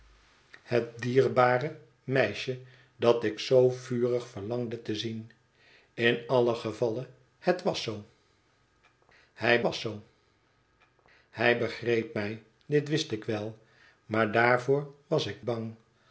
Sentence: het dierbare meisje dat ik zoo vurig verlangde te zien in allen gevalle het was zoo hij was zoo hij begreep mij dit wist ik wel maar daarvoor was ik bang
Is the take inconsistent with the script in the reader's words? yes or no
no